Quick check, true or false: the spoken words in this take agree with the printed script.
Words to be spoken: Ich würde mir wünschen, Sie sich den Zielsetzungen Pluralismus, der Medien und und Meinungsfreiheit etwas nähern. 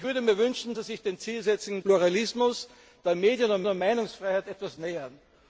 true